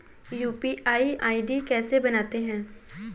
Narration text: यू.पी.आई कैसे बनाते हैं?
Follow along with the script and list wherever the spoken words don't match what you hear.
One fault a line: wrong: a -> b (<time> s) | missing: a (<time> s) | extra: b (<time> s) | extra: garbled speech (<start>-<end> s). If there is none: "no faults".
extra: आई.डी (1.2 s)